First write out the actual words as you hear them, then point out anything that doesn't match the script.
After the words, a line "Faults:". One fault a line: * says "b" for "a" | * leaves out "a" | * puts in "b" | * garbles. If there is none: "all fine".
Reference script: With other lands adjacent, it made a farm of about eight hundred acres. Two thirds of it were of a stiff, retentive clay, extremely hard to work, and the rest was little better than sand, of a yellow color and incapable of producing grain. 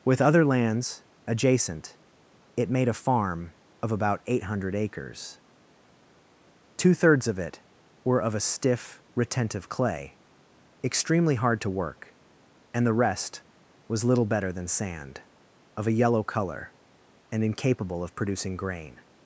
With other lands adjacent, it made a farm of about eight hundred acres. Two thirds of it were of a stiff, retentive clay, extremely hard to work, and the rest was little better than sand, of a yellow color and incapable of producing grain.
Faults:
all fine